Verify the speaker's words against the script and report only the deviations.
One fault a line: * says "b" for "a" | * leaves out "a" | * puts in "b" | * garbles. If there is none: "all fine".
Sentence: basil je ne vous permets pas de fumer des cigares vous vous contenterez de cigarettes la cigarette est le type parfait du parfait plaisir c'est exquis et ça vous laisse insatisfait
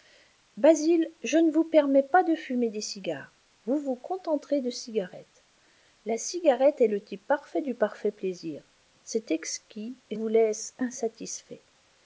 * leaves out "ça"